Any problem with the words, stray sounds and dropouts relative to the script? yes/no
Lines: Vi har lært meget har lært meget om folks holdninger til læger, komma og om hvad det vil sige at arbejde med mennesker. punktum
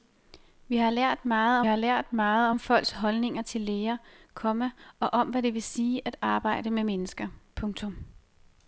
no